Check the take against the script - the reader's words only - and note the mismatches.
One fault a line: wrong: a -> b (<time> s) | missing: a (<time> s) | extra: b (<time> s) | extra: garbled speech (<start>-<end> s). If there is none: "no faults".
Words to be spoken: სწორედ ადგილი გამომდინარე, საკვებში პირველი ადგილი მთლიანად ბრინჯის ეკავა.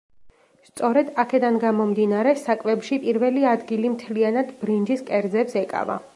wrong: ადგილი -> აქედან (1.2 s)
extra: კერძებს (5.1 s)